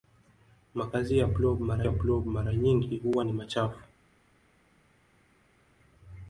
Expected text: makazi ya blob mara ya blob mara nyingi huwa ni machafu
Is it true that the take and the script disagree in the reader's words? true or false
false